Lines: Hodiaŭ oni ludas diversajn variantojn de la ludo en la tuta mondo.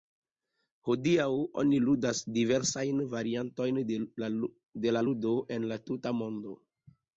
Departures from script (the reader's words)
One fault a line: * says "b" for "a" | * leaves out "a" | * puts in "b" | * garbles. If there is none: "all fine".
all fine